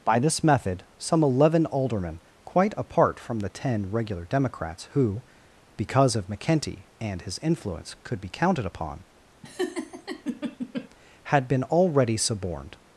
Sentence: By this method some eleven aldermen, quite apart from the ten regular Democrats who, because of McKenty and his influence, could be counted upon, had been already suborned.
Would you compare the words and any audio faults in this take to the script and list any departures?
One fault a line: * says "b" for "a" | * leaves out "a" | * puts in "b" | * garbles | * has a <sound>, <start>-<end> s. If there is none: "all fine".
* has a laugh, 9.4-10.9 s